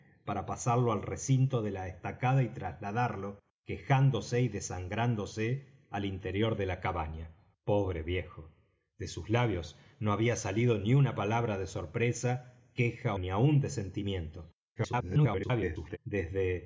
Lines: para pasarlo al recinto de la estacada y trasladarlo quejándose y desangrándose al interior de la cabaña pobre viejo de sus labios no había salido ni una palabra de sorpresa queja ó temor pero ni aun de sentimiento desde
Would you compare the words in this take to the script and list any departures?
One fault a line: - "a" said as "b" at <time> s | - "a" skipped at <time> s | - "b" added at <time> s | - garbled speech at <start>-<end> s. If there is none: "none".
- "ó temor pero" skipped at 13.2 s
- garbled speech at 14.8-16.0 s